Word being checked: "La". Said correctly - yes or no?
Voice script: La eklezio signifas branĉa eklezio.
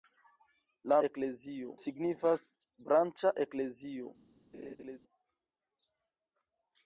yes